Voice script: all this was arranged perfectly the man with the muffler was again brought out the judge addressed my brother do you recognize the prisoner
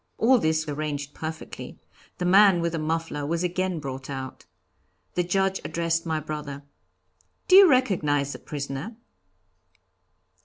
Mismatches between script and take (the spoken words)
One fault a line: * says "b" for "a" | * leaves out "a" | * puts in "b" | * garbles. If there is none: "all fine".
* leaves out "was"